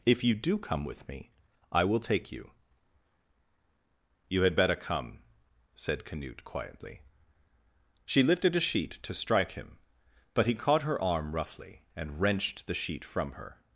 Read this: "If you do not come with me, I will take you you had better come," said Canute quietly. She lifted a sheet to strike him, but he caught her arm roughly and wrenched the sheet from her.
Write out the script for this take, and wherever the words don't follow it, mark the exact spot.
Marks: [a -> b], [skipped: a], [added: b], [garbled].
"If you do [skipped: not] come with me, I will take you you had better come," said Canute quietly. She lifted a sheet to strike him, but he caught her arm roughly and wrenched the sheet from her.